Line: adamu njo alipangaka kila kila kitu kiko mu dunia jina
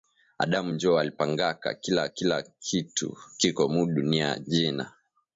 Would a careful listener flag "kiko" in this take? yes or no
no